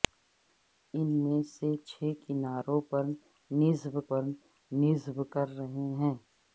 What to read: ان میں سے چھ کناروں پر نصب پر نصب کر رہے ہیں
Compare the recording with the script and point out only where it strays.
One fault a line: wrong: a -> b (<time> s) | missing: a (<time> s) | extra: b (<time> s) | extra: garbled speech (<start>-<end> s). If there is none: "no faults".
no faults